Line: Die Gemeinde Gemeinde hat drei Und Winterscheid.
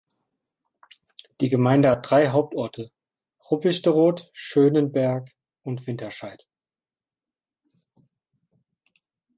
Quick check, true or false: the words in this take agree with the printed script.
false